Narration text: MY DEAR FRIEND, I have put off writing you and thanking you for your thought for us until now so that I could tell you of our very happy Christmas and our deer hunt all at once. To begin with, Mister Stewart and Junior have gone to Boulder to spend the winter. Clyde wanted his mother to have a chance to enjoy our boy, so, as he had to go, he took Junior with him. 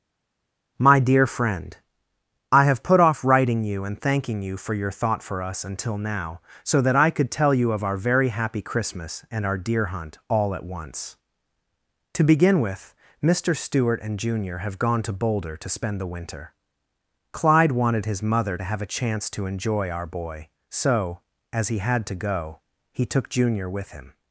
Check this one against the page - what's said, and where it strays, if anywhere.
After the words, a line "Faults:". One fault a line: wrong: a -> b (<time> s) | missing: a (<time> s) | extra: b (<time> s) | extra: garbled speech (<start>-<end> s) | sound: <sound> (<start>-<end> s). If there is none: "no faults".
MY DEAR FRIEND, I have put off writing you and thanking you for your thought for us until now so that I could tell you of our very happy Christmas and our deer hunt all at once. To begin with, Mister Stewart and Junior have gone to Boulder to spend the winter. Clyde wanted his mother to have a chance to enjoy our boy, so, as he had to go, he took Junior with him.
Faults:
no faults